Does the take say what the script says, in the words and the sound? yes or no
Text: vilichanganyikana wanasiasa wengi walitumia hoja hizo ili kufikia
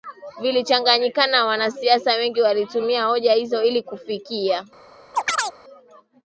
no